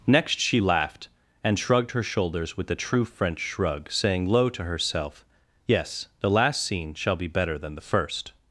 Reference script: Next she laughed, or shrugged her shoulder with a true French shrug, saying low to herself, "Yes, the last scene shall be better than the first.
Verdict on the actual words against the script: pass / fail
fail